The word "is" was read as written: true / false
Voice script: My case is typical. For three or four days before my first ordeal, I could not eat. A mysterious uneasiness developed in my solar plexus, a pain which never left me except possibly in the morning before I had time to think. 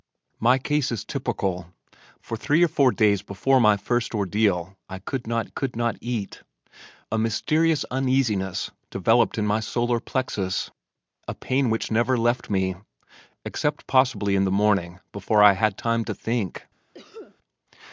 true